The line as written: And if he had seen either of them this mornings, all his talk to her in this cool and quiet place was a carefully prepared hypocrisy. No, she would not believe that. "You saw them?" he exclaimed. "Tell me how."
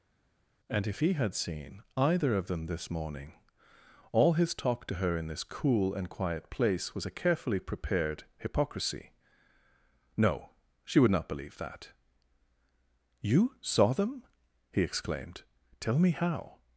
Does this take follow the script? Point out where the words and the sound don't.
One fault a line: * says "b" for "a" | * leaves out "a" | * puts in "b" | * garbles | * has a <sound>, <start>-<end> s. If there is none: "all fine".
* says "morning" for "mornings"